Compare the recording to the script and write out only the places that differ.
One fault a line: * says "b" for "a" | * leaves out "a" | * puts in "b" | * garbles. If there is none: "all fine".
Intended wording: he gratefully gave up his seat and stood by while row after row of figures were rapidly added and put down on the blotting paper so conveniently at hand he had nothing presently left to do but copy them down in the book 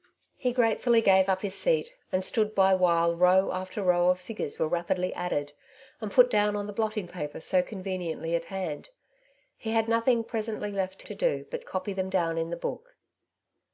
all fine